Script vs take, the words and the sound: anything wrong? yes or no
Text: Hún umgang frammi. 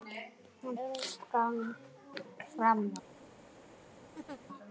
yes